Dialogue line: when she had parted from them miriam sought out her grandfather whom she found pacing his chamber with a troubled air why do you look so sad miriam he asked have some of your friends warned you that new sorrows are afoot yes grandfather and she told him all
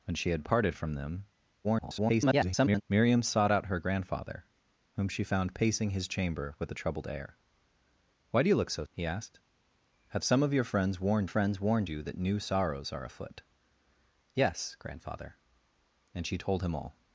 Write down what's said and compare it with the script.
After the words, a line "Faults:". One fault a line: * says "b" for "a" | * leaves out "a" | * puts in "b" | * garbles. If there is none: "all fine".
when she had parted from them [garbled] miriam sought out her grandfather whom she found pacing his chamber with a troubled air why do you look so he asked have some of your friends warned friends warned you that new sorrows are afoot yes grandfather and she told him all
Faults:
* garbles
* leaves out "sad miriam"
* puts in "friends warned"